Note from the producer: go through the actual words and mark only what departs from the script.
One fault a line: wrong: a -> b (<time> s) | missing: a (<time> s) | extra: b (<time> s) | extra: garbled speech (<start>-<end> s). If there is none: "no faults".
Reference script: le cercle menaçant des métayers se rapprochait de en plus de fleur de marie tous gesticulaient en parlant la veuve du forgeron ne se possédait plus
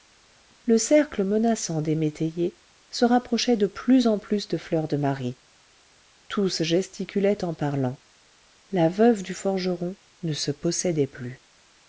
extra: plus (3.7 s)